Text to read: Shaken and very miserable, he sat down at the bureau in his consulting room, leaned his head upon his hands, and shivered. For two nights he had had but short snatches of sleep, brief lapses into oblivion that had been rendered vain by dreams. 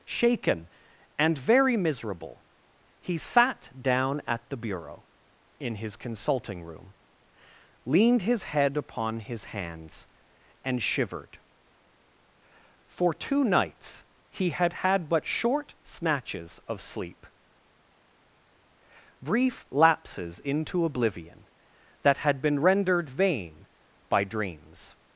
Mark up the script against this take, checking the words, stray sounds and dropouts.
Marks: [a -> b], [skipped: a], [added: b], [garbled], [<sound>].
Shaken and very miserable, he sat down at the bureau in his consulting room, leaned his head upon his hands, and shivered. For two nights he had had but short snatches of sleep, brief lapses into oblivion that had been rendered vain by dreams.